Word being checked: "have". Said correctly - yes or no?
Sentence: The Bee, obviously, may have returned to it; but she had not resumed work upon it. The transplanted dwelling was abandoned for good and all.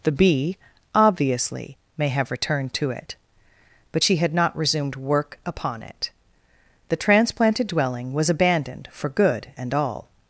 yes